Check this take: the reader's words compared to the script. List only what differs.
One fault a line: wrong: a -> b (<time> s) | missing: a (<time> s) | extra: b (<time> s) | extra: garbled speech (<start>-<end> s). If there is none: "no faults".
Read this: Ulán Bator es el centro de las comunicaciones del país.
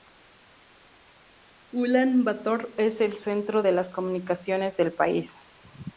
no faults